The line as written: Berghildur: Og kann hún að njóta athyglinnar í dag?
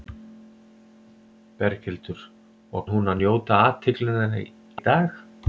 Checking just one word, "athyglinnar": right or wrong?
wrong